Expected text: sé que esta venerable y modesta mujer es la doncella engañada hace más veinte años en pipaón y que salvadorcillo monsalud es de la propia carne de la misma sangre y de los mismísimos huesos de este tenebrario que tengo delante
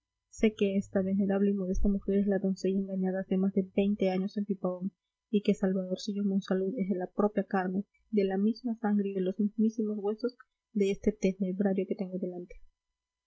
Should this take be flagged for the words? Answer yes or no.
yes